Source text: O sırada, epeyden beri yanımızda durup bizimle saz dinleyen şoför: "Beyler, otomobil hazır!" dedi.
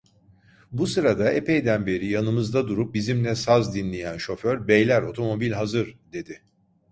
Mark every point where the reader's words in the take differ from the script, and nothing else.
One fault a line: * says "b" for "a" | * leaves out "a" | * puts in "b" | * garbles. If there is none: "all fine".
* says "Bu" for "O"